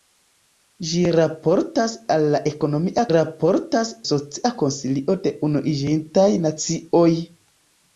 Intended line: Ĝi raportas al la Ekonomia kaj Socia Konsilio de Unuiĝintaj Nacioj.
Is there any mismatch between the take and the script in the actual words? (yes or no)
yes